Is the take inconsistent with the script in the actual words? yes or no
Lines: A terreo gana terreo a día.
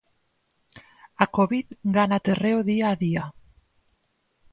yes